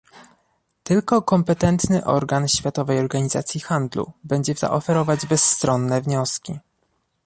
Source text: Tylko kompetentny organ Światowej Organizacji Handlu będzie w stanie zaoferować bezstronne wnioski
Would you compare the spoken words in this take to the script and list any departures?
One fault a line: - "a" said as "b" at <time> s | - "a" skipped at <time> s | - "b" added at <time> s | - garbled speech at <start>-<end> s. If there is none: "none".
- "stanie" skipped at 4.6 s